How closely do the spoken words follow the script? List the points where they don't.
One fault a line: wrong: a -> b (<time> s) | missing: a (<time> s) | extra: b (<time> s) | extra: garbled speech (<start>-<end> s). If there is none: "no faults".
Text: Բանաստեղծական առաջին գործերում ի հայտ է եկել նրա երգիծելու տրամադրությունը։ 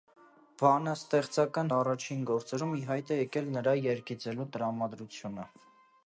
no faults